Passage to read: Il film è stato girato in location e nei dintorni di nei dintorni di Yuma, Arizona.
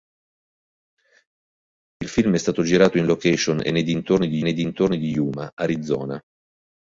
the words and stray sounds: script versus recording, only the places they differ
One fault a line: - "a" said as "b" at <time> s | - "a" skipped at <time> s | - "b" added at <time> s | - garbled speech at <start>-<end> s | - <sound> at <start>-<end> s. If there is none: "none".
none